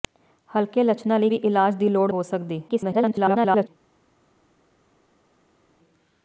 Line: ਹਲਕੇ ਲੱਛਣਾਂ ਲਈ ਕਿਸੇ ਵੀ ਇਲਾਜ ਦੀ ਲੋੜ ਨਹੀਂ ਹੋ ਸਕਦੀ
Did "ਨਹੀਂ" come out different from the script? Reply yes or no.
yes